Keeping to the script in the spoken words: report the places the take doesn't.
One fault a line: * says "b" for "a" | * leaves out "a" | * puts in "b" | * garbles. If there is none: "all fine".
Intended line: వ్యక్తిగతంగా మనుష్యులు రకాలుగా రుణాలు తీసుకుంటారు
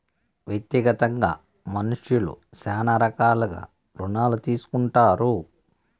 * puts in "శ్యానా"